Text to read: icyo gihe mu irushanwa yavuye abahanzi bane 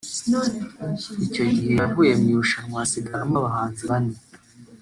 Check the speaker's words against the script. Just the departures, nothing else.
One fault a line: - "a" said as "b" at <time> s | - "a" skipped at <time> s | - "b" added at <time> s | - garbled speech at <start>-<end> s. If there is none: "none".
- "yavuye" added at 1.8 s
- "yavuye" said as "hasigaramo" at 2.8 s